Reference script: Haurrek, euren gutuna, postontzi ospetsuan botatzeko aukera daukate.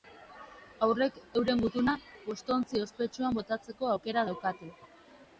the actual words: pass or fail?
pass